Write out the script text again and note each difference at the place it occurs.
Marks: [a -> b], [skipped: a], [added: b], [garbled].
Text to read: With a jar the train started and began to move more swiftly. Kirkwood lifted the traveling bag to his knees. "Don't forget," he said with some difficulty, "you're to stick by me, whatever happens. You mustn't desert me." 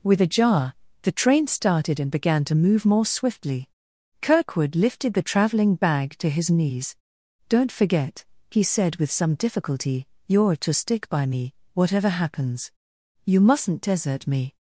With a jar the train started and began to move more swiftly. Kirkwood lifted the traveling bag to his knees. "Don't forget," he said with some difficulty, "you're to stick by me, whatever happens. You mustn't desert me."